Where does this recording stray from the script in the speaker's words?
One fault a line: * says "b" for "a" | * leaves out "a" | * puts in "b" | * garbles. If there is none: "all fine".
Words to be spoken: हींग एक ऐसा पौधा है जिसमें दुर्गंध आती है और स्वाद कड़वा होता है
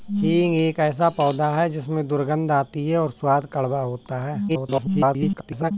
* garbles